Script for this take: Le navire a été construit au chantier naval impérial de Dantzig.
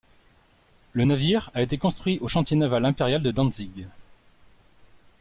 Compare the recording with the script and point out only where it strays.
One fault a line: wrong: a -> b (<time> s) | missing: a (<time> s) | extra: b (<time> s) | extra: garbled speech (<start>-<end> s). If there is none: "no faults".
no faults